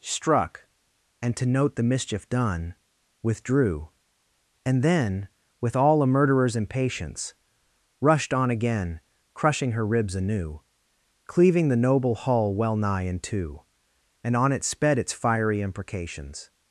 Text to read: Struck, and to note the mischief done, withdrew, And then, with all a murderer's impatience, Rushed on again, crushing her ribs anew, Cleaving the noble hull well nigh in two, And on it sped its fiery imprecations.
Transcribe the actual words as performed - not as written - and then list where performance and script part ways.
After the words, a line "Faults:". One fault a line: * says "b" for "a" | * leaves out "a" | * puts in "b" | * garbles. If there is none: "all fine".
Struck, and to note the mischief done, withdrew, And then, with all a murderer's impatience, Rushed on again, crushing her ribs anew, Cleaving the noble hull well nigh in two, And on it sped its fiery imprecations.
Faults:
all fine